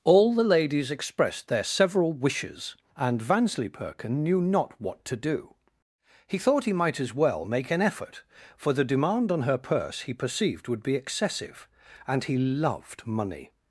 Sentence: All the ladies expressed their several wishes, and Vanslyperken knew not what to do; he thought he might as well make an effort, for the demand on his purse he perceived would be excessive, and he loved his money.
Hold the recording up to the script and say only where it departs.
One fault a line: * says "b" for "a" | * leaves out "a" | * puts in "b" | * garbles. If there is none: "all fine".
* says "her" for "his"
* leaves out "his"